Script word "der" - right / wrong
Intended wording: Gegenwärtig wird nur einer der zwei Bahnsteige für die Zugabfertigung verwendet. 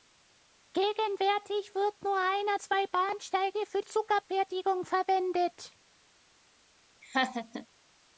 wrong